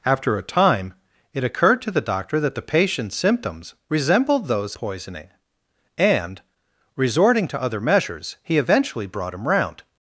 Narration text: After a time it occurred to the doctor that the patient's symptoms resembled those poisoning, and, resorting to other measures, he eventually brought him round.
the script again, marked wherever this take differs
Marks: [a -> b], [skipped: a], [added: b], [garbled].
After a time it occurred to the doctor that the patient's symptoms resembled those poisoning, and, resorting to other measures, he eventually brought him round.